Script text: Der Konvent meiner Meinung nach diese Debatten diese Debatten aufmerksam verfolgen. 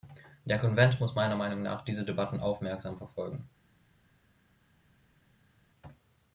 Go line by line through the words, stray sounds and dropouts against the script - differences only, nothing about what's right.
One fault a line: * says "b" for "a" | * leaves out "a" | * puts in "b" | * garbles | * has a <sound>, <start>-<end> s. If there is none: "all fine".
* puts in "muss"
* leaves out "diese Debatten"